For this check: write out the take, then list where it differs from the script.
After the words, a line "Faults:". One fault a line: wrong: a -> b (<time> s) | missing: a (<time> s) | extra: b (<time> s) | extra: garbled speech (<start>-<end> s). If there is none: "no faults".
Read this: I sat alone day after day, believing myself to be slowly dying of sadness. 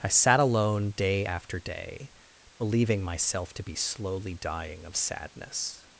I sat alone day after day, believing myself to be slowly dying of sadness.
Faults:
no faults